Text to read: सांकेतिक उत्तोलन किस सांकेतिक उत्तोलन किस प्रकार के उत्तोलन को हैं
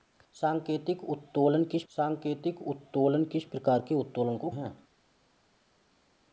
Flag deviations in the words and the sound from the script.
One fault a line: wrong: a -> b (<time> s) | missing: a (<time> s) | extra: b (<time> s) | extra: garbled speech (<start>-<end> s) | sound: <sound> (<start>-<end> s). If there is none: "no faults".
no faults